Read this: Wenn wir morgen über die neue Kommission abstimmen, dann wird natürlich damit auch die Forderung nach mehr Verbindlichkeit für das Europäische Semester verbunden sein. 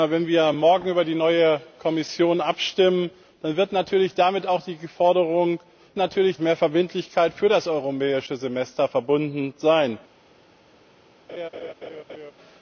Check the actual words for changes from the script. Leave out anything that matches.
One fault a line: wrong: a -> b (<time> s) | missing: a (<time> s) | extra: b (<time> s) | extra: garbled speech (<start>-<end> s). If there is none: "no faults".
wrong: nach -> natürlich (6.0 s)